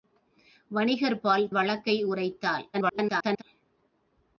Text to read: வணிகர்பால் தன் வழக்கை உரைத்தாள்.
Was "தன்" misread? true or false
true